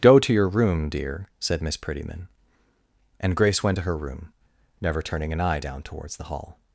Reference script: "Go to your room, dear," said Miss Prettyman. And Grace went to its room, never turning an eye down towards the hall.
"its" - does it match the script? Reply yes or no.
no